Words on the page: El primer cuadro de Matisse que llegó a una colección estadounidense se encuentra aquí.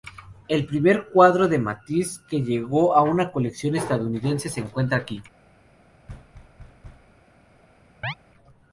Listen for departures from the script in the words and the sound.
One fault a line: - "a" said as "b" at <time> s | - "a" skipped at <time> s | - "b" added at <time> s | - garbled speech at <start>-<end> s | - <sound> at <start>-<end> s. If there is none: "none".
- thud at 6.1-7.1 s
- chirp at 8.0-8.1 s